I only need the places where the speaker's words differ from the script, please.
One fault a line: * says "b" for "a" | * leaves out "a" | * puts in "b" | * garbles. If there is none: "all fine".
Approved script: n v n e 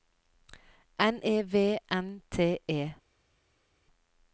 * puts in "e"
* puts in "t"